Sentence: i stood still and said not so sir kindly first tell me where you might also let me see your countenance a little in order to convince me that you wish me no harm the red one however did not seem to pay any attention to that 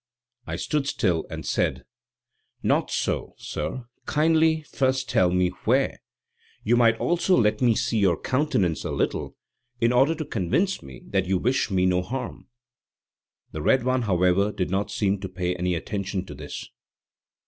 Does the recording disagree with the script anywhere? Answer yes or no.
yes